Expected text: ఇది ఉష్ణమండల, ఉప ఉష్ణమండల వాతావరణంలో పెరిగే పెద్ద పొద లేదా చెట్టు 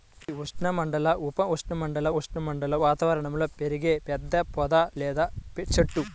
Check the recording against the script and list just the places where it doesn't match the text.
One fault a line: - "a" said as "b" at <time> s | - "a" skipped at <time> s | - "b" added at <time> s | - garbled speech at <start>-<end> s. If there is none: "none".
- "ఉష్ణమండల" added at 2.2 s